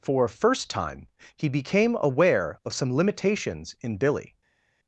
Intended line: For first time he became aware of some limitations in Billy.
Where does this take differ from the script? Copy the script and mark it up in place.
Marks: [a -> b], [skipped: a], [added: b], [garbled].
For first time he became aware of some limitations in Billy.